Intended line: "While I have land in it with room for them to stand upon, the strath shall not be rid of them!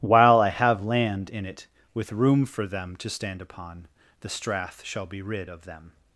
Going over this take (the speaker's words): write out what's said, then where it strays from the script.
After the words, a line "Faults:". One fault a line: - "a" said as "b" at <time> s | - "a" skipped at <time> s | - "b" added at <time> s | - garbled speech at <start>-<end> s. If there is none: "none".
"While I have land in it with room for them to stand upon, the strath shall be rid of them!
Faults:
- "not" skipped at 5.1 s